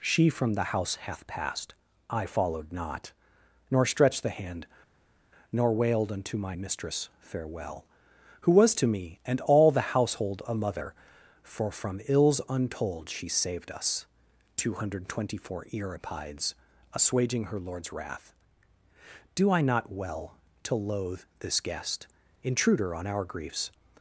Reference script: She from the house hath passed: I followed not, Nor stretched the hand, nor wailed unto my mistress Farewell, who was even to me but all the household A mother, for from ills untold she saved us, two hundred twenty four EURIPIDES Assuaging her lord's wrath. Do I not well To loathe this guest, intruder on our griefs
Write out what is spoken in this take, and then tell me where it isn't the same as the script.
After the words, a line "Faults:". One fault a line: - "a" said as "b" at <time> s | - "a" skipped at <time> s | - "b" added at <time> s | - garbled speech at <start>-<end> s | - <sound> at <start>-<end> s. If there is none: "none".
She from the house hath passed: I followed not, Nor stretched the hand, nor wailed unto my mistress Farewell, who was to me and all the household A mother, for from ills untold she saved us, two hundred twenty four EURIPIDES Assuaging her lord's wrath. Do I not well To loathe this guest, intruder on our griefs
Faults:
- "even" skipped at 8.7 s
- "but" said as "and" at 9.2 s